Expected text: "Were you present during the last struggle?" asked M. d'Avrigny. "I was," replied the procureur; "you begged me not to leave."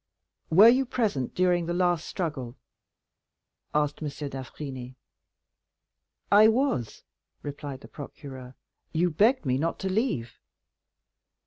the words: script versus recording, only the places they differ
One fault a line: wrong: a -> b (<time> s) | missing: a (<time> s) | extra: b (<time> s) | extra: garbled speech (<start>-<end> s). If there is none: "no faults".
no faults